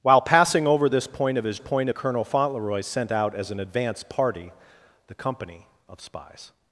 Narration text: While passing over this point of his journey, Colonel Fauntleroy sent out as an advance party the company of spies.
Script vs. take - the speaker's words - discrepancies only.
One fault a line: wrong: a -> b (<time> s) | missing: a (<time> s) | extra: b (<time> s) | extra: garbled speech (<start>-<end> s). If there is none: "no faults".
wrong: journey -> point (1.6 s)